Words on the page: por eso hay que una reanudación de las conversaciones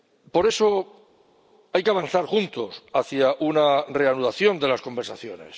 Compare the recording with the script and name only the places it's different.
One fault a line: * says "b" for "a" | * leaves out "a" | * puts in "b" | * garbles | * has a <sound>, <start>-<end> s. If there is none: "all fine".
* puts in "avanzar juntos hacia"